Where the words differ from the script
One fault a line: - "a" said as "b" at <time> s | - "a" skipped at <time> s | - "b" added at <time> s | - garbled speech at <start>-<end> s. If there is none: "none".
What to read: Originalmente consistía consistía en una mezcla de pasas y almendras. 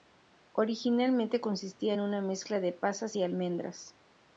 - "consistía" skipped at 1.9 s